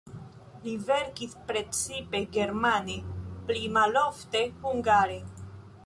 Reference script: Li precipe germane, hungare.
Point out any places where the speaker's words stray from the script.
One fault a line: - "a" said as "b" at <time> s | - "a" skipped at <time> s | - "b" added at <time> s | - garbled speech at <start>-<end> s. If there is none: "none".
- "verkis" added at 0.8 s
- "pli malofte" added at 3.5 s